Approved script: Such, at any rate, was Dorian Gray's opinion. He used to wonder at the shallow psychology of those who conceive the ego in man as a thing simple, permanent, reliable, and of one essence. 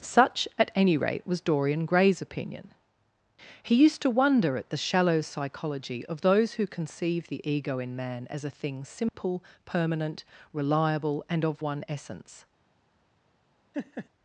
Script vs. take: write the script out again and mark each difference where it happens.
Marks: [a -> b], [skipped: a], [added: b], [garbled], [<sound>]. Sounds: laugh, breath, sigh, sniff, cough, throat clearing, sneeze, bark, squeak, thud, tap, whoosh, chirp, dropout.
Such, at any rate, was Dorian Gray's opinion. He used to wonder at the shallow psychology of those who conceive the ego in man as a thing simple, [dropout] permanent, reliable, and of one essence. [laugh]